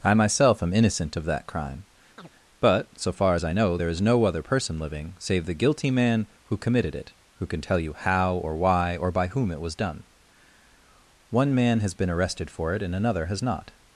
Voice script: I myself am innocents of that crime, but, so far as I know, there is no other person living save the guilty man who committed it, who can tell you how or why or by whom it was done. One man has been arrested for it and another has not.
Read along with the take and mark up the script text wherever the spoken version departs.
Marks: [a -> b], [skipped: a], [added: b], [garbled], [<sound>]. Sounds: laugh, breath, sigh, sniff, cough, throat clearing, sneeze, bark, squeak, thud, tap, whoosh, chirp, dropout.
I myself am [innocents -> innocent] of that crime, [chirp] but, so far as I know, there is no other person living save the guilty man who committed it, who can tell you how or why or by whom it was done. One man has been arrested for it and another has not.